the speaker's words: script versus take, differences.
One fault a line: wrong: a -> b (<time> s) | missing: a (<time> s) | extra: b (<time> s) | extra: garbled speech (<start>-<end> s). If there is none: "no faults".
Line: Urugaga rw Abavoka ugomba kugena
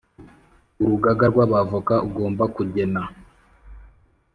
no faults